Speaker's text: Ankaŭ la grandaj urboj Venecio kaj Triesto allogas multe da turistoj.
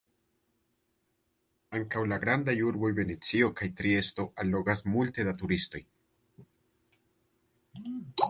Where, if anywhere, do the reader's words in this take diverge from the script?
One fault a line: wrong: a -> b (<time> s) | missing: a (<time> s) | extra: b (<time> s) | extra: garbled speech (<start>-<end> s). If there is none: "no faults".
no faults